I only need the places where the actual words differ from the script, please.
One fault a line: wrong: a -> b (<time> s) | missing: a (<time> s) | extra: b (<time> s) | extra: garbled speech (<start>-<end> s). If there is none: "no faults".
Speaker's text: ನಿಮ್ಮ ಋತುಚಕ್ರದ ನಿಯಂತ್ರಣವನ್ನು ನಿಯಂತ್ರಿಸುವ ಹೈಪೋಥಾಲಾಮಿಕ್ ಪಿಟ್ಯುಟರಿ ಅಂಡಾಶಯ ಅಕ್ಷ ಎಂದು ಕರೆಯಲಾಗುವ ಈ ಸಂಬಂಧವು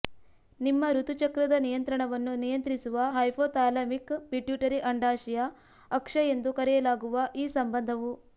no faults